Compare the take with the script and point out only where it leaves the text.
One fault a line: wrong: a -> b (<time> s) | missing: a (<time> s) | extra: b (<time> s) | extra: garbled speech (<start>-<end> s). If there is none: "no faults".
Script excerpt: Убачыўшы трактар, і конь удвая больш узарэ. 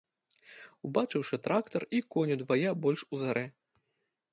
no faults